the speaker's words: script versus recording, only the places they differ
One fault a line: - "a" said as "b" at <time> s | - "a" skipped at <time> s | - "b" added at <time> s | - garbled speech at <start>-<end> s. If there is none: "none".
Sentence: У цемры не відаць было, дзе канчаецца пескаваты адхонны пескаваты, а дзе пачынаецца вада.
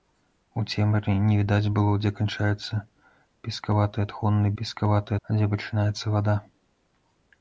none